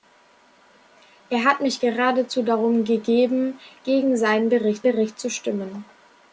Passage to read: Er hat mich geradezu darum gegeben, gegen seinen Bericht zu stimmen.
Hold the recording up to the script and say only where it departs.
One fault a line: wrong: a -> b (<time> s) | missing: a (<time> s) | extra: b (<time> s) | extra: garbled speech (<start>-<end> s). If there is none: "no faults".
extra: Bericht (4.8 s)